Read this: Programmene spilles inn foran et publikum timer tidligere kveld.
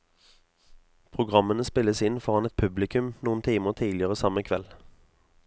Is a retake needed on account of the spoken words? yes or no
yes